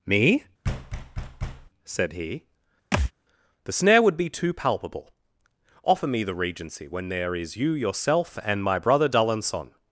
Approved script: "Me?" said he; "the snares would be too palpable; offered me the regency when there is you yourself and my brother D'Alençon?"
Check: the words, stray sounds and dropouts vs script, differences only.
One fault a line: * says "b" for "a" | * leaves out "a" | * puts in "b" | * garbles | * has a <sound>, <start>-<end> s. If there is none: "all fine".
* has a thud, 0.6-1.7 s
* has a thud, 2.9-3.1 s
* says "snare" for "snares"
* says "offer" for "offered"